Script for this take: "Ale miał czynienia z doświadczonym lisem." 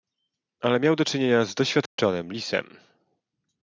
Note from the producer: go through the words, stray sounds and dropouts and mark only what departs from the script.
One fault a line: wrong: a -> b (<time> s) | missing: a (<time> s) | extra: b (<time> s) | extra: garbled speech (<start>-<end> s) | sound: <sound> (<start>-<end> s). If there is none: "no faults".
extra: do (0.9 s)
sound: dropout (1.9-2.0 s)